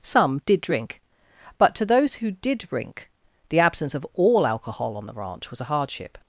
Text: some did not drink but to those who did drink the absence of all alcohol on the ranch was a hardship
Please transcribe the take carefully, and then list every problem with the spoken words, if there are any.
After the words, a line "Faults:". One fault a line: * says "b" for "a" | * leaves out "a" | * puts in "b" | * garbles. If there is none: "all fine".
some did drink but to those who did drink the absence of all alcohol on the ranch was a hardship
Faults:
* leaves out "not"